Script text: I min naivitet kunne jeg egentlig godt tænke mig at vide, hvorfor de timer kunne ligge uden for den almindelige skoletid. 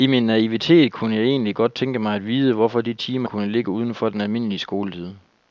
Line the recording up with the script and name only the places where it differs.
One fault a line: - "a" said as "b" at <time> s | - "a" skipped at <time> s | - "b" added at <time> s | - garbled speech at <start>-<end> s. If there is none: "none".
none